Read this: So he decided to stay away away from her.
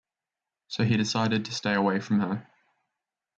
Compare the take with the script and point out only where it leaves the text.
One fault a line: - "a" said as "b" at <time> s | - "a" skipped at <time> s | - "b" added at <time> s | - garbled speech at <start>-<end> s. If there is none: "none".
- "away" skipped at 2.0 s